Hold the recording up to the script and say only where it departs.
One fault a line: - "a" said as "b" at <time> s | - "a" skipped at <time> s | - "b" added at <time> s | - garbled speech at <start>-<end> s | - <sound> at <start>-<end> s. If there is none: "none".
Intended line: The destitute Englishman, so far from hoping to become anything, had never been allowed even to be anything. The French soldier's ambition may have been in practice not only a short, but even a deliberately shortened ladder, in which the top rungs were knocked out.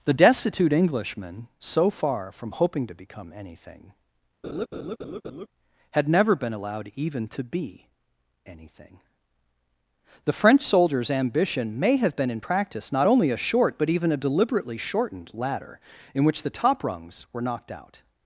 - laugh at 4.4-5.5 s